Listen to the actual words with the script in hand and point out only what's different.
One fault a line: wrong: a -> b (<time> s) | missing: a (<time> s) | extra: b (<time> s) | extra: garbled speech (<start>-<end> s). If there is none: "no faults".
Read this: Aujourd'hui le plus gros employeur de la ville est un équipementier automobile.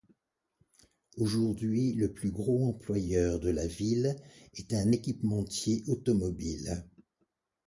no faults